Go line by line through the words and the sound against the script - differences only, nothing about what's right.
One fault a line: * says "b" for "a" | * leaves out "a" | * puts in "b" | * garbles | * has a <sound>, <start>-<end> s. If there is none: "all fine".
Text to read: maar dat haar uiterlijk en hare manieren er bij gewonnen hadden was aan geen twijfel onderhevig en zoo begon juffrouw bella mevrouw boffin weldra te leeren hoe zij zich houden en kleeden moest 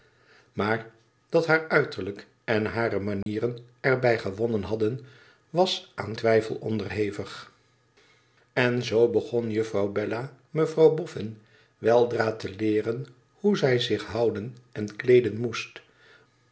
* has a dropout, 3.2-3.3 s
* leaves out "geen"